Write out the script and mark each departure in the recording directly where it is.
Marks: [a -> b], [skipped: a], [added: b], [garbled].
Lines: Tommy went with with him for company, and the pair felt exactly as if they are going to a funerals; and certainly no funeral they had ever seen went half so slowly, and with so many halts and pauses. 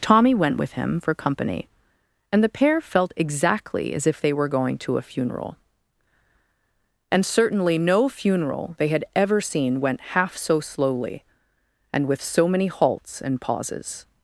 Tommy went with [skipped: with] him for company, and the pair felt exactly as if they [are -> were] going to a [funerals; -> funeral] and certainly no funeral they had ever seen went half so slowly, and with so many halts and pauses.